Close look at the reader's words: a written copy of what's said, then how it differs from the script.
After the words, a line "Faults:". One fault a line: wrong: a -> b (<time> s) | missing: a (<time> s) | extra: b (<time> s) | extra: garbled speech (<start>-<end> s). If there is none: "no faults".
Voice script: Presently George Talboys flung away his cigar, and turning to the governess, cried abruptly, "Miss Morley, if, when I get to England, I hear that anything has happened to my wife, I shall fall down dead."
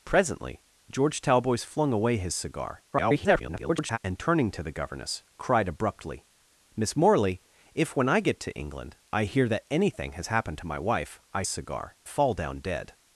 Presently George Talboys flung away his cigar, [garbled] and turning to the governess, cried abruptly, "Miss Morley, if, when I get to England, I hear that anything has happened to my wife, I cigar fall down dead."
Faults:
extra: garbled speech (2.9-4.0 s)
wrong: shall -> cigar (11.5 s)